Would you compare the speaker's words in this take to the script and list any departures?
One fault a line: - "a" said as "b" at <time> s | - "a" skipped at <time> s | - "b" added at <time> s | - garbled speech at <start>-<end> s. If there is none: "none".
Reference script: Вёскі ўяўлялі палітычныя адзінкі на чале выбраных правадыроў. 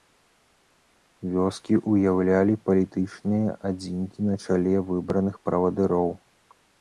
none